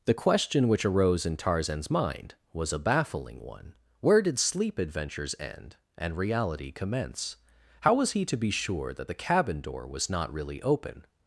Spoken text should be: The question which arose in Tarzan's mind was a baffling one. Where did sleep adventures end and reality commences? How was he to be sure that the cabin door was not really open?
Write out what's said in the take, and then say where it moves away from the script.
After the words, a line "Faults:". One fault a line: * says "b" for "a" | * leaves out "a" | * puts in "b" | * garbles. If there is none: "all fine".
The question which arose in Tarzan's mind was a baffling one. Where did sleep adventures end and reality commence? How was he to be sure that the cabin door was not really open?
Faults:
* says "commence" for "commences"